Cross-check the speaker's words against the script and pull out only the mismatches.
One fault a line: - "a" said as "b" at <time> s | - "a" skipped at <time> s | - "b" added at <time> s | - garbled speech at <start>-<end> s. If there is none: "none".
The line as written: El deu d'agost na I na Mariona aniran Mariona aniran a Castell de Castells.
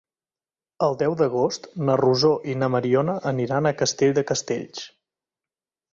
- "Rosó" added at 2.0 s
- "Mariona aniran" skipped at 3.7 s